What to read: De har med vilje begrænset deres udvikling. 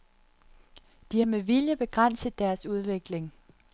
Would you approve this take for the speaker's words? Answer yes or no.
yes